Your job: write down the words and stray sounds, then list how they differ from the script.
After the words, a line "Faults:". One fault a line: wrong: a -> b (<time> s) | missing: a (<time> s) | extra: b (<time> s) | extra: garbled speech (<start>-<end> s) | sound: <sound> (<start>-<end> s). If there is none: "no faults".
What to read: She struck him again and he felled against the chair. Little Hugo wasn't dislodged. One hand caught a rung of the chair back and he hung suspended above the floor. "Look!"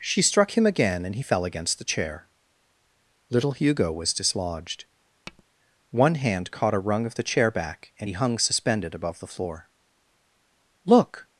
She struck him again and he fell against the chair. Little Hugo was dislodged. One hand caught a rung of the chair back and he hung suspended above the floor. "Look!"
Faults:
wrong: felled -> fell (1.2 s)
wrong: wasn't -> was (3.9 s)
sound: tap (5.3-5.4 s)